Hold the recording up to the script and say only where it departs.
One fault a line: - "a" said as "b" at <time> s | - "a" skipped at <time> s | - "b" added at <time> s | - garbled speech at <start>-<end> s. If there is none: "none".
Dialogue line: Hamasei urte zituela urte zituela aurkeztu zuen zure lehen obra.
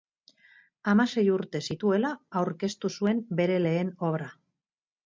- "urte zituela" skipped at 2.1 s
- "zure" said as "bere" at 3.4 s